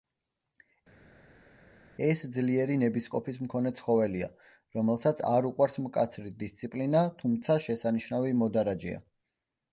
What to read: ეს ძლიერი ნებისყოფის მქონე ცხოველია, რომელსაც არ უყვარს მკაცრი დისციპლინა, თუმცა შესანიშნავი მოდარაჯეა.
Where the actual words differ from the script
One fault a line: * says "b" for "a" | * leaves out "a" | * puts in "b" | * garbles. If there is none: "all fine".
all fine